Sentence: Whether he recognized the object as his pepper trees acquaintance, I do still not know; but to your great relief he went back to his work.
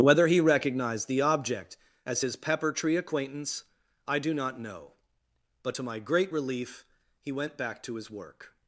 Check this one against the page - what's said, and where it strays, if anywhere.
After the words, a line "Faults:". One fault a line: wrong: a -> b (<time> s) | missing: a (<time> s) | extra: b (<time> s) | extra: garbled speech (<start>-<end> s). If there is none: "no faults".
Whether he recognized the object as his pepper tree acquaintance, I do not know; but to my great relief he went back to his work.
Faults:
wrong: trees -> tree (2.7 s)
missing: still (4.3 s)
wrong: your -> my (5.8 s)